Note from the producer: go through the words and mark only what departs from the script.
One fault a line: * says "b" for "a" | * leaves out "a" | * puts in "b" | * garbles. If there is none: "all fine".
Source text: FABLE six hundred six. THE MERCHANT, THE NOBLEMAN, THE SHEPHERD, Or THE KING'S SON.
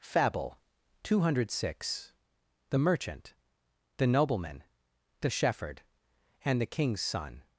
* says "two" for "six"
* says "AND" for "Or"